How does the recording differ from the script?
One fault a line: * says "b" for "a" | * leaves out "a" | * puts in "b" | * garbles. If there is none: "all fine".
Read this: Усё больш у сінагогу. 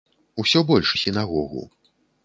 all fine